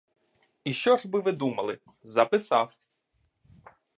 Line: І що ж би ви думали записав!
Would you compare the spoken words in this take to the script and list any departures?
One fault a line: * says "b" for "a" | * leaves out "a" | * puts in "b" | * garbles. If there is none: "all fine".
all fine